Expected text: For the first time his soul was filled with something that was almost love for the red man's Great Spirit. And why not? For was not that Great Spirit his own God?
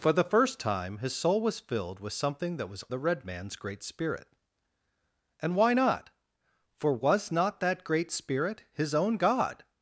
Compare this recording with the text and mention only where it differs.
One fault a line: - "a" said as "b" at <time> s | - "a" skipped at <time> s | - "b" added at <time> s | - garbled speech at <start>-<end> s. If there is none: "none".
- "almost love for" skipped at 2.8 s